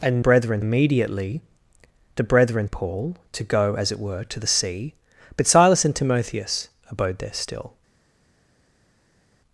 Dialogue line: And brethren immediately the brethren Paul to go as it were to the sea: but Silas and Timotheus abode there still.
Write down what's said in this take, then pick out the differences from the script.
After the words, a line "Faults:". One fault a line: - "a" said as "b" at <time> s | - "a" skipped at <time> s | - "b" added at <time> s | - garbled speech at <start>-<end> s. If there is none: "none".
And brethren immediately the brethren Paul to go as it were to the sea: but Silas and Timotheus abode there still.
Faults:
none